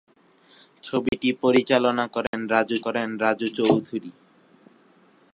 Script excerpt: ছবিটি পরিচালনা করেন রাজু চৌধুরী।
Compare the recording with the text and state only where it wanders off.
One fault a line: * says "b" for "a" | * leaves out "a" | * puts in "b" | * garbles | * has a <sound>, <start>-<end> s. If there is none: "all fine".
* has a dropout, 1.1-1.1 s
* has a dropout, 2.3-2.3 s
* puts in "করেন রাজু"